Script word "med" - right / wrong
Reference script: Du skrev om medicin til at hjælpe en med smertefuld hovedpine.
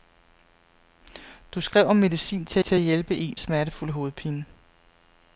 wrong